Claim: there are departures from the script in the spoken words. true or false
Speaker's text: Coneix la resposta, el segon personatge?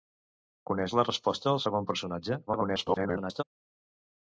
true